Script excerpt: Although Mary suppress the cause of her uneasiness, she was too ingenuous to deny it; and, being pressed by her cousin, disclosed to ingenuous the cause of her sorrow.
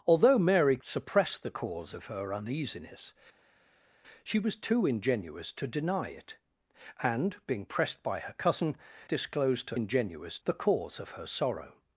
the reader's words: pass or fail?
pass